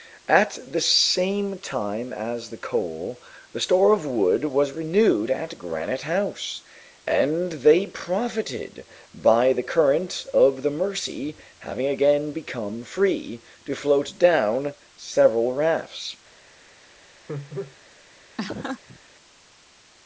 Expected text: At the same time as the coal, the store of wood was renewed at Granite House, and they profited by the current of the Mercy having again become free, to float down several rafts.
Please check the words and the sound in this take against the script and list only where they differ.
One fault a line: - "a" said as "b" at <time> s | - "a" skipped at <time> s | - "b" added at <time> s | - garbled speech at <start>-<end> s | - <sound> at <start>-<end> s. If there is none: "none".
- laugh at 17.3-17.8 s
- laugh at 18.4-19.0 s